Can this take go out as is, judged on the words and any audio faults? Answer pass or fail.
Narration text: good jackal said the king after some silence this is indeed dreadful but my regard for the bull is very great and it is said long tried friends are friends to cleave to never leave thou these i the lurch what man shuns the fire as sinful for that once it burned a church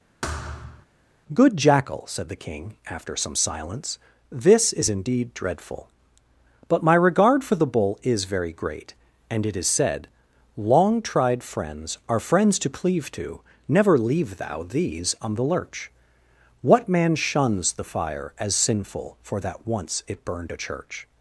fail